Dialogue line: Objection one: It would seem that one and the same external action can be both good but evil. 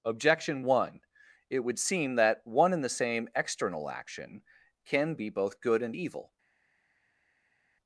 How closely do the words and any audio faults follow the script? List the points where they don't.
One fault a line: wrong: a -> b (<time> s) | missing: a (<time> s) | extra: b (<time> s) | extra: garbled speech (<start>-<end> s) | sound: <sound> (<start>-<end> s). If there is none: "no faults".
wrong: but -> and (5.8 s)